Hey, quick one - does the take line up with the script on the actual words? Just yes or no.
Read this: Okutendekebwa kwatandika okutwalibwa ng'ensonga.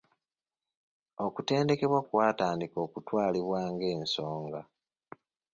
yes